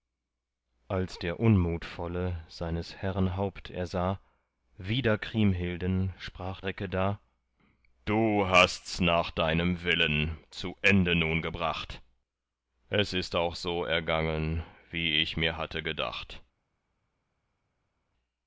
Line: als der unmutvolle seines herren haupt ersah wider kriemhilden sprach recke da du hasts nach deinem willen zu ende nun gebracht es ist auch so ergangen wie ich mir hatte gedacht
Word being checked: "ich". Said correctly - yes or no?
yes